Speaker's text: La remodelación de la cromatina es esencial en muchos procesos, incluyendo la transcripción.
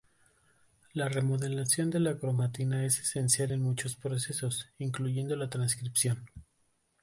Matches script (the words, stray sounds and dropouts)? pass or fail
pass